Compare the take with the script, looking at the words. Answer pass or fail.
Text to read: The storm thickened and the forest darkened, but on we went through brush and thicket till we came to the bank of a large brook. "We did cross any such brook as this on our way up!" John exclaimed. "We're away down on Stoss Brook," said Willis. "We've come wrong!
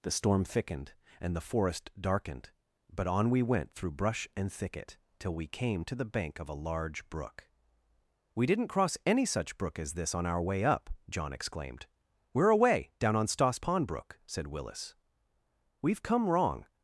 fail